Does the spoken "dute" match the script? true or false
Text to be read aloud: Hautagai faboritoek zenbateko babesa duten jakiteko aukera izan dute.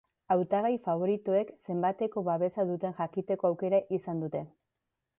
true